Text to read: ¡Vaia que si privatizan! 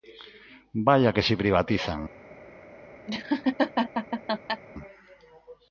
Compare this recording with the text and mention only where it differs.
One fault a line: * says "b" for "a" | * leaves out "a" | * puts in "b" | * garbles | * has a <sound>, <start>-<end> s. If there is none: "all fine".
* has a laugh, 3.1-4.6 s